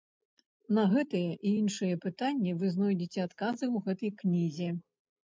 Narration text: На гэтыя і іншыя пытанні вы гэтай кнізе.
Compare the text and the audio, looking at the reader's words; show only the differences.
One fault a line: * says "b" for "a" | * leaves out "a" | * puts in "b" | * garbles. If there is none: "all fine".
* puts in "знойдзеце адказы ў"